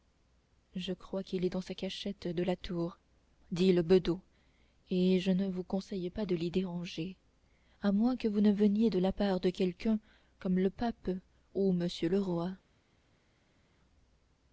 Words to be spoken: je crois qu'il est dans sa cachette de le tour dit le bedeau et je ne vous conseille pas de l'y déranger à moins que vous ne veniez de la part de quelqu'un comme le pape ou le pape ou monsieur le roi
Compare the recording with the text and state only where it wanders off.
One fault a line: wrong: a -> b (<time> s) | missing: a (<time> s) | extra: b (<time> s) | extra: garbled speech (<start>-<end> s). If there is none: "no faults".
wrong: le -> la (2.4 s)
missing: le pape ou (11.7 s)